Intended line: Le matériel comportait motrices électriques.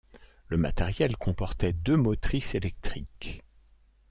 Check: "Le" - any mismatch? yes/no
no